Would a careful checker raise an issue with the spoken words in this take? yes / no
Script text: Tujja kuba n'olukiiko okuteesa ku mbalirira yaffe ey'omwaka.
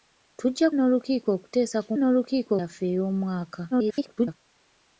yes